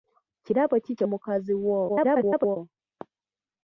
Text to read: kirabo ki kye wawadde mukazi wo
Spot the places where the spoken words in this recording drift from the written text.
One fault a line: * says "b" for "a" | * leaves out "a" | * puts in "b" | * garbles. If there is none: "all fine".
* leaves out "wawadde"
* garbles